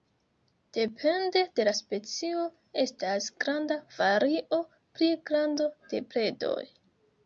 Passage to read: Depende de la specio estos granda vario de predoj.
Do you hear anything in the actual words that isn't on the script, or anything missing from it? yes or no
yes